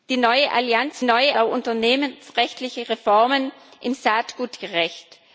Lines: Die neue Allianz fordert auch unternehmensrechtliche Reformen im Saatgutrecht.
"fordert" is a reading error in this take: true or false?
true